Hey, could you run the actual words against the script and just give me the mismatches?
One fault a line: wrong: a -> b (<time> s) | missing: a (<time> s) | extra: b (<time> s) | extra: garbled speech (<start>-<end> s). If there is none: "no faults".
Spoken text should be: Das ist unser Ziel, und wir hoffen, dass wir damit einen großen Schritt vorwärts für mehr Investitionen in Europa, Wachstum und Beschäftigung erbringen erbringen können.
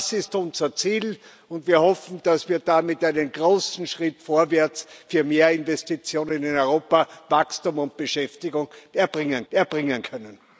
no faults